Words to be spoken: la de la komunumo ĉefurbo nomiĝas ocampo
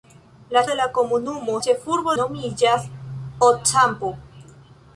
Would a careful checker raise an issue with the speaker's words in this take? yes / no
no